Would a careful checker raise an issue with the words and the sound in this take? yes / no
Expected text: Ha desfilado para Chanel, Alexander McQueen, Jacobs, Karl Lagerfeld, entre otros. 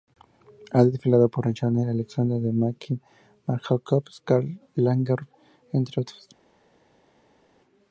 yes